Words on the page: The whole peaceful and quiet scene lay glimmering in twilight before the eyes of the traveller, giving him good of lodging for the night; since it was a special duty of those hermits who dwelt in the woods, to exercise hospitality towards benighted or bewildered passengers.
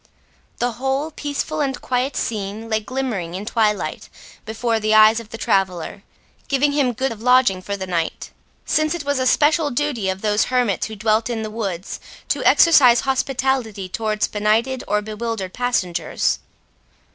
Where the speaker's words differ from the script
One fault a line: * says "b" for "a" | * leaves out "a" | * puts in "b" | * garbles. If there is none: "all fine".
all fine